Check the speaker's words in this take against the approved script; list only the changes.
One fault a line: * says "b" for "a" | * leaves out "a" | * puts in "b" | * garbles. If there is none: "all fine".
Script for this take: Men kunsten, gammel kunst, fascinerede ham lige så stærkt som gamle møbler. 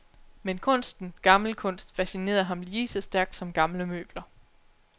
all fine